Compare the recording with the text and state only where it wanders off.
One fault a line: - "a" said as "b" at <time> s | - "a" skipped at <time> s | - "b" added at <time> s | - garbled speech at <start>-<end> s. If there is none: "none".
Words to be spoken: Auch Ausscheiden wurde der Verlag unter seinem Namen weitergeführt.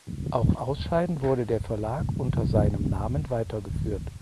none